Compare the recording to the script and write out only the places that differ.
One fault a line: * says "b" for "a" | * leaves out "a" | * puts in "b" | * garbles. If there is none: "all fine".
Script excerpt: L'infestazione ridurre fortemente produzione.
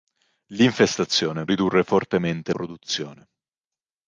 all fine